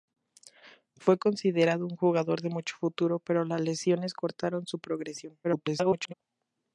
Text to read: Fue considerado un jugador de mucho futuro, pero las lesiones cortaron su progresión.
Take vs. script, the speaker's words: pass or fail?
fail